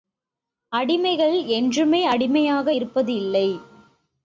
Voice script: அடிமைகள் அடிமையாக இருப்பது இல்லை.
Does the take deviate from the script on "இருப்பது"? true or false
false